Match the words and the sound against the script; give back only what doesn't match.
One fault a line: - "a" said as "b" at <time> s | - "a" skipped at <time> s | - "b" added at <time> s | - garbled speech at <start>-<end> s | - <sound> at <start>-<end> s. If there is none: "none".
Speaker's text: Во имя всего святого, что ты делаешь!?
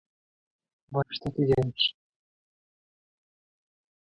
- "имя всего святого" skipped at 1.1 s